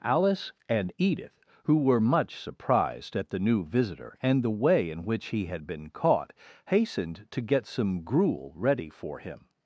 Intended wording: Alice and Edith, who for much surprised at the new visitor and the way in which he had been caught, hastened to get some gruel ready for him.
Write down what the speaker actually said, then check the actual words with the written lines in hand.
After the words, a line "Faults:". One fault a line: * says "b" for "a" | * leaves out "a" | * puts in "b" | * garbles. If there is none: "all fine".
Alice and Edith, who were much surprised at the new visitor and the way in which he had been caught, hastened to get some gruel ready for him.
Faults:
* says "were" for "for"